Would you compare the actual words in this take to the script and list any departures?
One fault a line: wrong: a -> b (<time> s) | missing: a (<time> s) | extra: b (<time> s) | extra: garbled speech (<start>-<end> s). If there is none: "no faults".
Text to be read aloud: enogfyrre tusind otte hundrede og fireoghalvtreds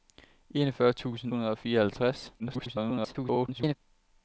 missing: otte (1.3 s)
extra: garbled speech (2.4-3.8 s)